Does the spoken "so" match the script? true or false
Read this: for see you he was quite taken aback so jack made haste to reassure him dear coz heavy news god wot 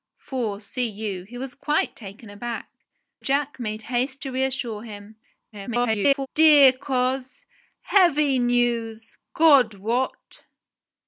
false